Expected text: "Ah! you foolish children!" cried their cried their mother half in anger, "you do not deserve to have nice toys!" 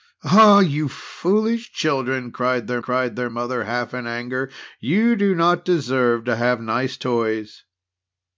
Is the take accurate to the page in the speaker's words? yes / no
yes